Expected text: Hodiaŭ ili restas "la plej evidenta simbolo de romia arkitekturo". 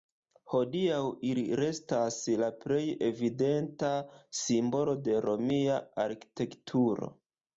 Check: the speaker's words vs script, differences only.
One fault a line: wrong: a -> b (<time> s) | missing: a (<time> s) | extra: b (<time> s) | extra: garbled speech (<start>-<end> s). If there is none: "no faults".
no faults